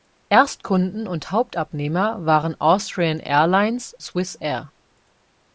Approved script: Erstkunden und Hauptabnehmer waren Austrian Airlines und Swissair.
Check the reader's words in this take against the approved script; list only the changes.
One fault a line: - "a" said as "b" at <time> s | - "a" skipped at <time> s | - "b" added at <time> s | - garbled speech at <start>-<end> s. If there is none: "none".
- "und" skipped at 4.0 s